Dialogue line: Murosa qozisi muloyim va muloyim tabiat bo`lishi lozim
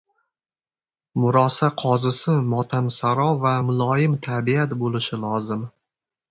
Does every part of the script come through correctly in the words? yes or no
no